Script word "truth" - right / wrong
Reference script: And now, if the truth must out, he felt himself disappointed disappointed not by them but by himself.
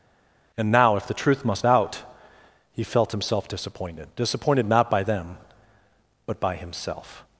right